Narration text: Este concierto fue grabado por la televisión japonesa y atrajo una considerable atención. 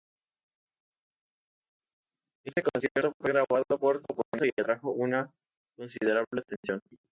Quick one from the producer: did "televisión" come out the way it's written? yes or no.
no